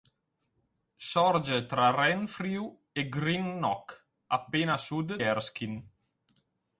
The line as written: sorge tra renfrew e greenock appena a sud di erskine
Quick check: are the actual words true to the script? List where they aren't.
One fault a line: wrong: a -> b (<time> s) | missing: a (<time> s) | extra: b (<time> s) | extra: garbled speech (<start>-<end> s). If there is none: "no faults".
missing: di (5.2 s)